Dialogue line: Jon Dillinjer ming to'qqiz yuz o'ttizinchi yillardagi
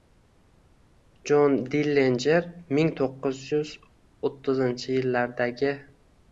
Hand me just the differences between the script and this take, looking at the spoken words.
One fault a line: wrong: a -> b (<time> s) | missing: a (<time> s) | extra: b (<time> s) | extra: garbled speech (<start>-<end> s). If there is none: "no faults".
no faults